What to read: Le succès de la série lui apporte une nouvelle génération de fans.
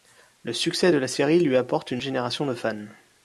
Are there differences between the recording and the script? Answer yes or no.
yes